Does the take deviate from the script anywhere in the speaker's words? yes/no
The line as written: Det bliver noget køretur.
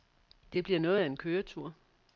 yes